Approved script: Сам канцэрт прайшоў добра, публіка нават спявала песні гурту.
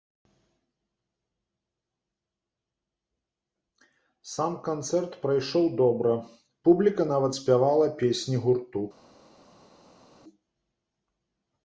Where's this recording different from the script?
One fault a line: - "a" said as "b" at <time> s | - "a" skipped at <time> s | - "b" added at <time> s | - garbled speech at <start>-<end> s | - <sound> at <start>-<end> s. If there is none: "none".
none